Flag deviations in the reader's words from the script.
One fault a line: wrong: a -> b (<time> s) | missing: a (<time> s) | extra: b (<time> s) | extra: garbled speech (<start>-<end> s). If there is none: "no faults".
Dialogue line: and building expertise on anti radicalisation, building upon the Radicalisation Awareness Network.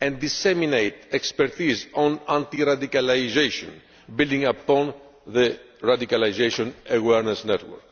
wrong: building -> disseminate (0.2 s)